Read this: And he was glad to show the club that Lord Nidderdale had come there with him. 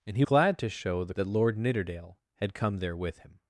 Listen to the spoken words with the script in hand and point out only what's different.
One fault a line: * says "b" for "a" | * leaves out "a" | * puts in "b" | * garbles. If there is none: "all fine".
* leaves out "was"
* leaves out "club"